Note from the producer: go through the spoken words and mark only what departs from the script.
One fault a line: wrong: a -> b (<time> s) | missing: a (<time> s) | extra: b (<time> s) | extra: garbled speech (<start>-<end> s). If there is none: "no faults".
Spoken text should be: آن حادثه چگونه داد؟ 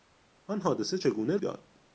no faults